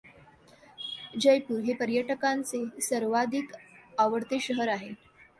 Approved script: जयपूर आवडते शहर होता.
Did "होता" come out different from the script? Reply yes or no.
yes